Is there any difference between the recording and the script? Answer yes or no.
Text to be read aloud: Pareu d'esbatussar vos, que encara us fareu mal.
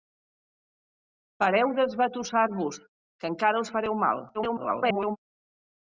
yes